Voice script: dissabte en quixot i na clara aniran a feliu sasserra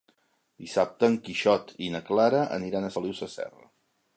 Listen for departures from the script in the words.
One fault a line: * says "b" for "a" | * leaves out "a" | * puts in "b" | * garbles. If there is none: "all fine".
all fine